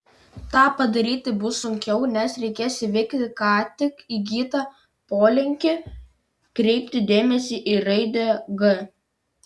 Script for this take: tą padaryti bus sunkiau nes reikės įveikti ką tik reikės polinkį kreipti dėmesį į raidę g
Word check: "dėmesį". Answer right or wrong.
right